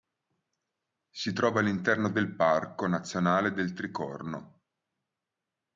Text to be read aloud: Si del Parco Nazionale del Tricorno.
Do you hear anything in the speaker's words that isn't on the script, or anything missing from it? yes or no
yes